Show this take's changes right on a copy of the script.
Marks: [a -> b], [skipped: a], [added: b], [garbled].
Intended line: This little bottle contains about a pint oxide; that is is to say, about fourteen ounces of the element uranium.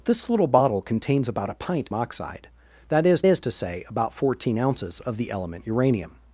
This little bottle contains about a pint oxide; that is is to say, about fourteen ounces of the element uranium.